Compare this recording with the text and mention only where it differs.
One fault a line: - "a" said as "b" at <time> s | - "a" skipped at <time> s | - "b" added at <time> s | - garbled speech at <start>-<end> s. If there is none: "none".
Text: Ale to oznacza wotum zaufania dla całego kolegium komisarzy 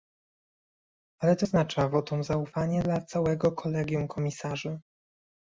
none